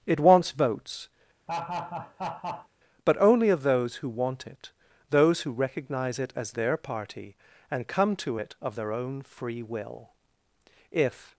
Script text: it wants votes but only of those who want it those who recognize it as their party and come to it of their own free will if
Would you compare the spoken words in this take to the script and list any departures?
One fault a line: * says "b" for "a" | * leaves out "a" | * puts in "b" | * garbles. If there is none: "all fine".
all fine